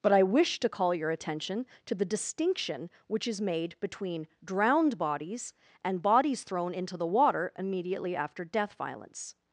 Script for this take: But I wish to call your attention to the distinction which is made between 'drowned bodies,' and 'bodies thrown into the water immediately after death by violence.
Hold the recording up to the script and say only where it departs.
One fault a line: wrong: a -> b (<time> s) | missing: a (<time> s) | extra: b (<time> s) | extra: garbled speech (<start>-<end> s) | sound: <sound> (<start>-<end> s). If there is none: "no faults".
missing: by (8.7 s)